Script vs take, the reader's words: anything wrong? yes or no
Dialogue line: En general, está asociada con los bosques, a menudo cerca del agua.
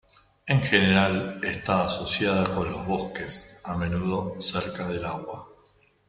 no